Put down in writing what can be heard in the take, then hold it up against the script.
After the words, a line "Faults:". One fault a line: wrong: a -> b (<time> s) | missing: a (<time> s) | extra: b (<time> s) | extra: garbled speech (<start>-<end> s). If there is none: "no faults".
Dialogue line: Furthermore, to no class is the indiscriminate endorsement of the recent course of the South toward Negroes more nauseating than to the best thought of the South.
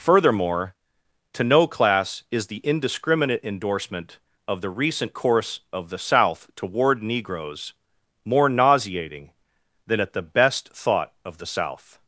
Furthermore, to no class is the indiscriminate endorsement of the recent course of the South toward Negroes more nauseating than at the best thought of the South.
Faults:
wrong: to -> at (10.0 s)